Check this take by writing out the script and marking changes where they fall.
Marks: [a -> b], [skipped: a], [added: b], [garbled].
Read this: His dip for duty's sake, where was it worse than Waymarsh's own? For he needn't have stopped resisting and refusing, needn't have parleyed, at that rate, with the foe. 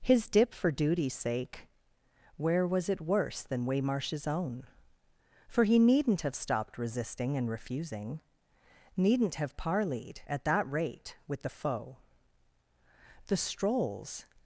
His dip for duty's sake, where was it worse than Waymarsh's own? For he needn't have stopped resisting and refusing, needn't have parleyed, at that rate, with the foe. [added: The strolls]